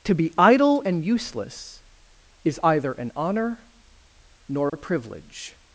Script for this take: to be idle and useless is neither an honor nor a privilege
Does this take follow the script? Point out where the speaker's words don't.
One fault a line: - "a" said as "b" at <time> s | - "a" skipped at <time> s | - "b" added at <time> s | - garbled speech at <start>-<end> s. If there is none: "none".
- "neither" said as "either" at 2.6 s